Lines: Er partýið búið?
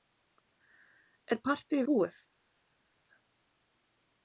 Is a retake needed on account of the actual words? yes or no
no